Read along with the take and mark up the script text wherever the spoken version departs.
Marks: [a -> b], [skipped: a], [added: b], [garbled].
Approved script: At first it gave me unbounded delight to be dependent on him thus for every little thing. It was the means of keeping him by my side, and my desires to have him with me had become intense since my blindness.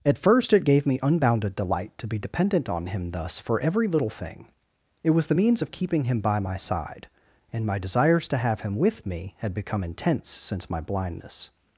At first it gave me unbounded delight to be dependent on him thus for every little thing. It was the means of keeping him by my side, and my desires to have him with me had become intense since my blindness.